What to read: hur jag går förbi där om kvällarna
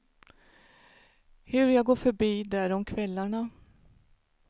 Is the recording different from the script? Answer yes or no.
no